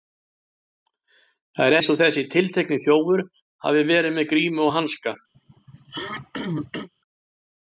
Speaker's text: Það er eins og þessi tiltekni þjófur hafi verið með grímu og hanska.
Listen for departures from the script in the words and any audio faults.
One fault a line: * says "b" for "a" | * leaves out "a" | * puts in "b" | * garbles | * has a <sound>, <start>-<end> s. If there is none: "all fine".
* has a throat clearing, 5.3-6.9 s